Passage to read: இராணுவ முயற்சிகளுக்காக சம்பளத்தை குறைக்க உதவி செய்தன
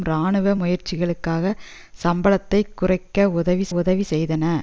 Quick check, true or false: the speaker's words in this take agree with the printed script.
false